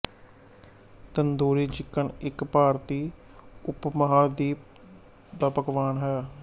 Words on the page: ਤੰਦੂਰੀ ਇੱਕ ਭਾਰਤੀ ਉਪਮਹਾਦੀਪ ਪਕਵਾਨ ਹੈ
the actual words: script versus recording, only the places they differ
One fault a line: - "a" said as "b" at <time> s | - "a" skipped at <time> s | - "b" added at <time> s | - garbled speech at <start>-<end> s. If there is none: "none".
- "ਚਿਕਨ" added at 1.7 s
- "ਦਾ" added at 5.4 s